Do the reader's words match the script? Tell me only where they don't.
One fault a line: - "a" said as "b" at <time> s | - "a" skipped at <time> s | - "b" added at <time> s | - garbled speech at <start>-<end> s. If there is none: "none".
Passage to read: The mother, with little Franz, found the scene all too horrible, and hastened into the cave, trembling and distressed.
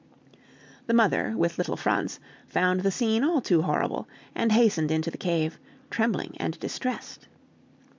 none